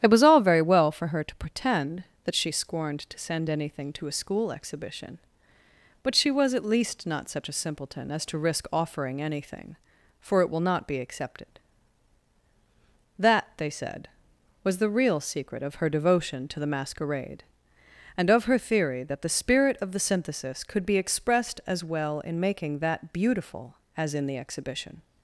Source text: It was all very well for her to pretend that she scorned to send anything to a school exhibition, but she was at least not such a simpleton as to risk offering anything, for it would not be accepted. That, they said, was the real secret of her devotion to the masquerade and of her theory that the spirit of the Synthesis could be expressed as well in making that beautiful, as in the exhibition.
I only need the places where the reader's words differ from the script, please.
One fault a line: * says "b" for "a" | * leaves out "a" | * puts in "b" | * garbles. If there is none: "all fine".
* says "will" for "would"